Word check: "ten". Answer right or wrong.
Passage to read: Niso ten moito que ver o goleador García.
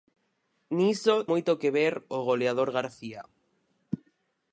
wrong